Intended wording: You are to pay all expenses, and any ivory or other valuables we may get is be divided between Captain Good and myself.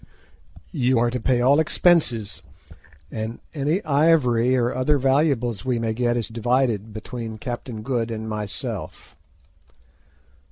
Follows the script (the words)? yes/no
yes